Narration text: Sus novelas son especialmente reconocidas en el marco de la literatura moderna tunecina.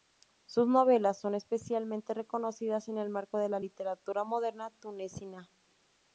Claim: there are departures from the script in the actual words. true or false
false